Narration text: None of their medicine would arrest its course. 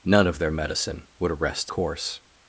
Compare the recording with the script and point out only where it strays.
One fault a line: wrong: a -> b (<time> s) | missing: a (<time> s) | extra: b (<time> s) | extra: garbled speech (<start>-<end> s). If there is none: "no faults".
missing: its (1.7 s)